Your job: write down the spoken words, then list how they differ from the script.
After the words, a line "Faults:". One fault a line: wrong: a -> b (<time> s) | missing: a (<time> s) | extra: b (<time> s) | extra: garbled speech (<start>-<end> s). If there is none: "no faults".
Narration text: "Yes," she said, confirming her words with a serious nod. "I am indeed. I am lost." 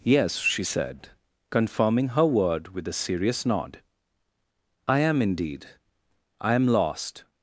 "Yes," she said, confirming her word with a serious nod. "I am indeed. I am lost."
Faults:
wrong: words -> word (2.2 s)